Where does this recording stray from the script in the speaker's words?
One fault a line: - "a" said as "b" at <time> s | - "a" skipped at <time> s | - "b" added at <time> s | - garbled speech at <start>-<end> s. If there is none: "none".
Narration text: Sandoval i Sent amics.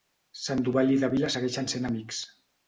- "Davila segueixen" added at 1.0 s